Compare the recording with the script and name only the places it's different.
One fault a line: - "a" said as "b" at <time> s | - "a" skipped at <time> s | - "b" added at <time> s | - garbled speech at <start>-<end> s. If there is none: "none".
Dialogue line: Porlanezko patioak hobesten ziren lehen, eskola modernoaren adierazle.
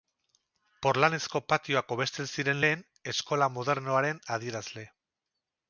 none